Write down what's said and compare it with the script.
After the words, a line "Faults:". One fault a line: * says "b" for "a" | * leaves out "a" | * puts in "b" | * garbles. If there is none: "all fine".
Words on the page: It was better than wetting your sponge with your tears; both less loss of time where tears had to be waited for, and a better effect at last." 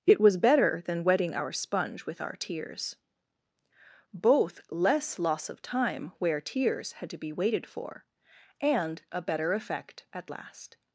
It was better than wetting our sponge with our tears; both less loss of time where tears had to be waited for, and a better effect at last."
Faults:
* says "our" for "your"
* says "our" for "your"